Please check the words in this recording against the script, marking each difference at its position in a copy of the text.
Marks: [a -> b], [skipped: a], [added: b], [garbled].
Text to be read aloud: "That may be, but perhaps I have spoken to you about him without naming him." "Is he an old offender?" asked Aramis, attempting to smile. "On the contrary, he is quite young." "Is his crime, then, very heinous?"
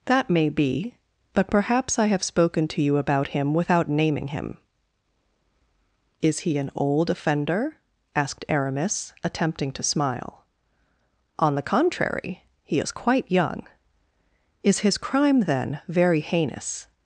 "That may be, but perhaps I have spoken to you about him without naming him." "Is he an old offender?" asked Aramis, attempting to smile. "On the contrary, he is quite young." "Is his crime, then, very heinous?"